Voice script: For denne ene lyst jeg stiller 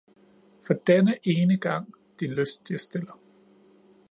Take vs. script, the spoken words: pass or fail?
fail